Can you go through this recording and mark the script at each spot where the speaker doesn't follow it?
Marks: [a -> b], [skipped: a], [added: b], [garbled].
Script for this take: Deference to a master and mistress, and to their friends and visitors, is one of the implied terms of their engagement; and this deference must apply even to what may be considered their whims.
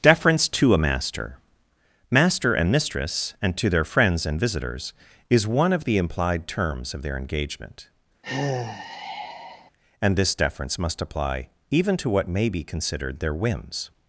Deference to a master [added: master] and mistress, and to their friends and visitors, is one of the implied terms of their engagement; and this deference must apply even to what may be considered their whims.